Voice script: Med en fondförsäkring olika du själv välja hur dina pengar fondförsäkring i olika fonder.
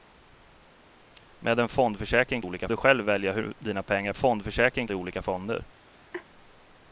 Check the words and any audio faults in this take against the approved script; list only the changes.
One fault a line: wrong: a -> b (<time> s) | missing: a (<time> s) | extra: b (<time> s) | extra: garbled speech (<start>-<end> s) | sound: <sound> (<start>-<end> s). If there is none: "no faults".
sound: laugh (6.1-6.3 s)